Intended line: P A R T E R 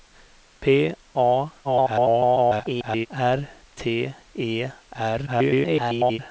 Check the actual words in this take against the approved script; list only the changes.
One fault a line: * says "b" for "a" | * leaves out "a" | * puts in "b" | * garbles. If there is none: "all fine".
* garbles
* garbles